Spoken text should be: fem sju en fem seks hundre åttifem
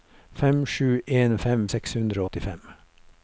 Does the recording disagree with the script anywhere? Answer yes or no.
no